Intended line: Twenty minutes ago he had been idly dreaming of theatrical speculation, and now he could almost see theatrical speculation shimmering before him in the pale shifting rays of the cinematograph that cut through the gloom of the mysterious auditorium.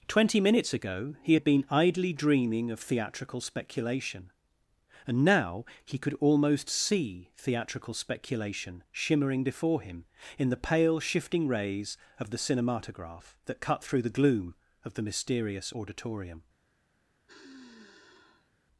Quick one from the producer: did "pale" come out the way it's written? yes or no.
yes